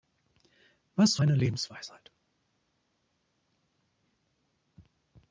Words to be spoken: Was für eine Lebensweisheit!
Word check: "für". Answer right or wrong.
wrong